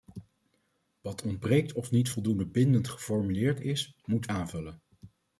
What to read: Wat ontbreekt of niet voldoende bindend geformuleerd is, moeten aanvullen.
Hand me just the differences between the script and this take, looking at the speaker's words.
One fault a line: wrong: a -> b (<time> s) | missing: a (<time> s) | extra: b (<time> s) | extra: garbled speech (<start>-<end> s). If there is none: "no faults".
no faults